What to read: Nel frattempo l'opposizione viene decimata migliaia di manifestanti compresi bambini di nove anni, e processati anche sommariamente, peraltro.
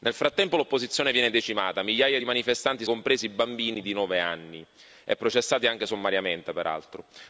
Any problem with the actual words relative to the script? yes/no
no